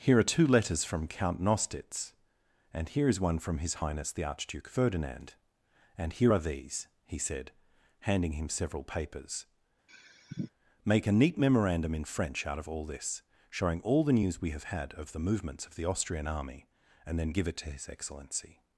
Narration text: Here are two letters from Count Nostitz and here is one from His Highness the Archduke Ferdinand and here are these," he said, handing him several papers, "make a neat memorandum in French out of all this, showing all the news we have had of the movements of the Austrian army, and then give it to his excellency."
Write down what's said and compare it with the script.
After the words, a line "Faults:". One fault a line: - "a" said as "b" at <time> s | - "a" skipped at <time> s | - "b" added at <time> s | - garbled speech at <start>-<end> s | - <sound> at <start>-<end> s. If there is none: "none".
Here are two letters from Count Nostitz and here is one from His Highness the Archduke Ferdinand and here are these," he said, handing him several papers, "make a neat memorandum in French out of all this, showing all the news we have had of the movements of the Austrian army, and then give it to his excellency."
Faults:
- sigh at 9.9-10.5 s